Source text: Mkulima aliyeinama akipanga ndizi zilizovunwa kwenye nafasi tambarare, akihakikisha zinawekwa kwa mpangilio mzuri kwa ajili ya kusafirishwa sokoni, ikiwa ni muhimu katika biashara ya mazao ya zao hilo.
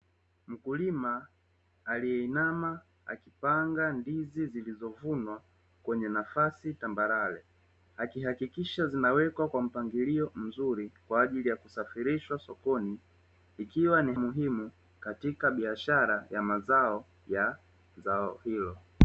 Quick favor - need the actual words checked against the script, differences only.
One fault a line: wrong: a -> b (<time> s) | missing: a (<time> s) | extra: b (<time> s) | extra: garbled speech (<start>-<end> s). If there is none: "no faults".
no faults